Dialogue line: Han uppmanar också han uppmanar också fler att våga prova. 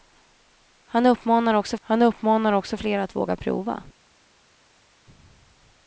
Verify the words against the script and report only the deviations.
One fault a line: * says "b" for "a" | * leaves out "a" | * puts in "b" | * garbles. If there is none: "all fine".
all fine